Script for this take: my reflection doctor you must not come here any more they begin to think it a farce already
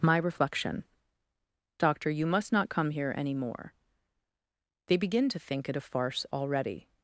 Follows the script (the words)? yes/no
yes